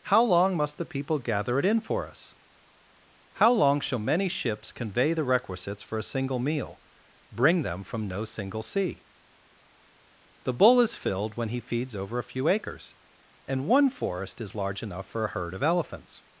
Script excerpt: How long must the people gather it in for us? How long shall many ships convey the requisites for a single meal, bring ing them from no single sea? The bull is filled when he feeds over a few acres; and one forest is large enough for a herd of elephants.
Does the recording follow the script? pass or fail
fail